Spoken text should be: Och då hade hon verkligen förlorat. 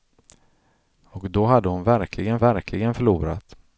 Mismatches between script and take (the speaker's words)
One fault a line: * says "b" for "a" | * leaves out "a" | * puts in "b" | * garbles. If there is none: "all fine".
* puts in "verkligen"